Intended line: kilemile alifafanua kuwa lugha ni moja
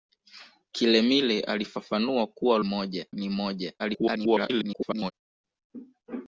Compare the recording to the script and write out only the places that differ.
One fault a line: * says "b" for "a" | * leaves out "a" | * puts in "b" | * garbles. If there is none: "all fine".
* says "moja" for "lugha"
* garbles